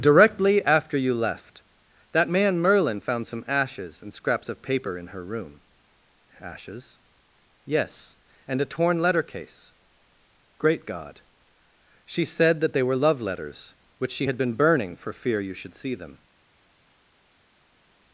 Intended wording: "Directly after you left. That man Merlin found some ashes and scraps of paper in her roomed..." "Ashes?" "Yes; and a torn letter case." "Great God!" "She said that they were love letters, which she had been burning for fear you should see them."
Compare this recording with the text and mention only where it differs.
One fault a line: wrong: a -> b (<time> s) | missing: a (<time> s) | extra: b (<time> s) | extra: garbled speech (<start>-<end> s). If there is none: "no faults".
wrong: roomed -> room (5.2 s)